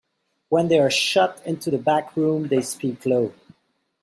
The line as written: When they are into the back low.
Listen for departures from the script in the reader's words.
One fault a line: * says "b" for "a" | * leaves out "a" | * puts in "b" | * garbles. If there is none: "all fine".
* puts in "shut"
* puts in "room they speak"